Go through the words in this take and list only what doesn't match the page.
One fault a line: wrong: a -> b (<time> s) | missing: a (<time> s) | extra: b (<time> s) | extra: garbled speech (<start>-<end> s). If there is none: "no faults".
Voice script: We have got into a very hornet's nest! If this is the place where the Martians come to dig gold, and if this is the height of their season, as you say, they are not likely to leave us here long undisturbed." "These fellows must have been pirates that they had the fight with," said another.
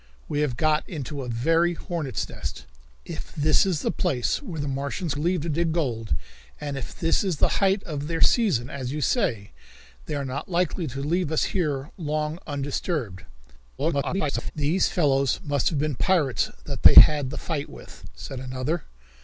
wrong: come -> leave (5.2 s)
extra: garbled speech (13.8-14.5 s)